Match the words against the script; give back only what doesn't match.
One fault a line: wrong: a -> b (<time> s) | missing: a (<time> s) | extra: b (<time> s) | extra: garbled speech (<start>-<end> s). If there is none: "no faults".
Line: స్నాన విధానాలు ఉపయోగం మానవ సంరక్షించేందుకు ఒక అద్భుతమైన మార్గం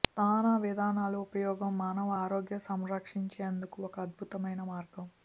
extra: ఆరోగ్య (2.2 s)